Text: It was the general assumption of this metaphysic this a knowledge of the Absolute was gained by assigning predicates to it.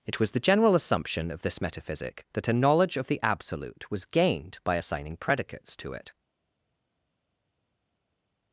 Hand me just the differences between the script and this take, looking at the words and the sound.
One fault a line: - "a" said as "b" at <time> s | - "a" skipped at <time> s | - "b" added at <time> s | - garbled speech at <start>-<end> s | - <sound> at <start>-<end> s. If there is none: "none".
- "this" said as "that" at 2.3 s